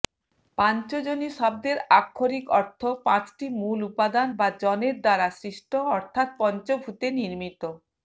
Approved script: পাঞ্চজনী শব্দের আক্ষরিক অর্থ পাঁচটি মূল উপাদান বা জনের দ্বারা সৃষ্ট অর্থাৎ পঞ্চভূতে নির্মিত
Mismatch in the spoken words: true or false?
false